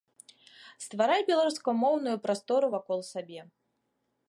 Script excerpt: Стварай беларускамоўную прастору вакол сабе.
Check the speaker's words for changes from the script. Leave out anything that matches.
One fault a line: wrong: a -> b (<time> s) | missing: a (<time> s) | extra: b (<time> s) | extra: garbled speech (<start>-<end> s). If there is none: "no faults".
no faults